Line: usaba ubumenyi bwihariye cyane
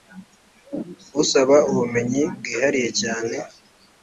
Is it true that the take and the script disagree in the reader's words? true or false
false